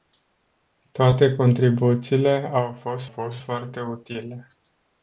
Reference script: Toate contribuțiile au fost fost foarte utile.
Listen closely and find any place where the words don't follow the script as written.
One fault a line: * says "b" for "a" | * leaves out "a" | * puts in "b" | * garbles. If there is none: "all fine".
all fine